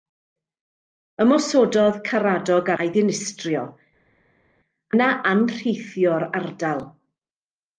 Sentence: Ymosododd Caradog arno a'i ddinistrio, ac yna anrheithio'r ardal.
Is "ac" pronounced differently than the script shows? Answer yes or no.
yes